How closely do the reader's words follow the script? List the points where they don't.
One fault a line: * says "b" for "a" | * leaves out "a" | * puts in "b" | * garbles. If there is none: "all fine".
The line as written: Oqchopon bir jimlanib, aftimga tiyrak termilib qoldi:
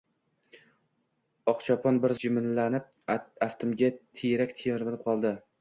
all fine